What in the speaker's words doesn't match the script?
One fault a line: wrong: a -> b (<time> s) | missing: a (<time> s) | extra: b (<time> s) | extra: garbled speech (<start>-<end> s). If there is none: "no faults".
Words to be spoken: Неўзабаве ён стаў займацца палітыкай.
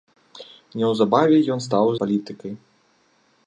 missing: займацца (1.9 s)